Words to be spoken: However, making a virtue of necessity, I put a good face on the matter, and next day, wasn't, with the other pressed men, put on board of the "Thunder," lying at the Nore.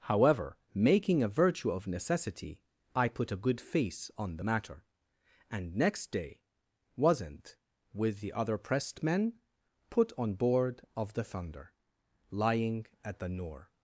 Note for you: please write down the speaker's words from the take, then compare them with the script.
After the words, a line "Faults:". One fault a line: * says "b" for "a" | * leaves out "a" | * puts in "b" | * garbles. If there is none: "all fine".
However, making a virtue of necessity, I put a good face on the matter, and next day, wasn't, with the other pressed men, put on board of the "Thunder," lying at the Nore.
Faults:
all fine